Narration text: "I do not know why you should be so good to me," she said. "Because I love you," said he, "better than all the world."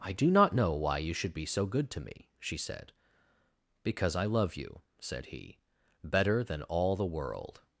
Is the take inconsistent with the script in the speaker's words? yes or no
no